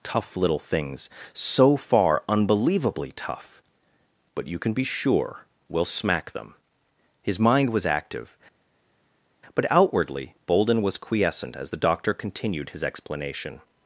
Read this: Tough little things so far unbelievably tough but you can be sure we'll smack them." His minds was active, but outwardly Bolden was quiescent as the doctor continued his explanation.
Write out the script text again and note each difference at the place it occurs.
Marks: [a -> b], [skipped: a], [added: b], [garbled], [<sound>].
Tough little things so far unbelievably tough but you can be sure we'll smack them." His [minds -> mind] was active, but outwardly Bolden was quiescent as the doctor continued his explanation.